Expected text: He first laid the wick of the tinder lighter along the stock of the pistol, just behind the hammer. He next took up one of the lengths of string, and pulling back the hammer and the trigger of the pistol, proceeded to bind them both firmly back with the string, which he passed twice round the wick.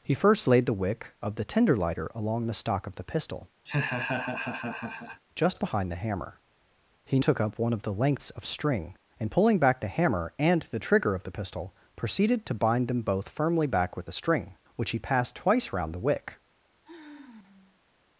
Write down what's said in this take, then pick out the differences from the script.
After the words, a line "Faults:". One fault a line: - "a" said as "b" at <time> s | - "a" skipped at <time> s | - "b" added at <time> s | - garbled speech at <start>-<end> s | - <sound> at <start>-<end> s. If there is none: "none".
He first laid the wick of the tinder lighter along the stock of the pistol, just behind the hammer. He took up one of the lengths of string, and pulling back the hammer and the trigger of the pistol, proceeded to bind them both firmly back with the string, which he passed twice round the wick.
Faults:
- laugh at 3.7-5.2 s
- "next" skipped at 7.2 s
- sigh at 16.8-17.9 s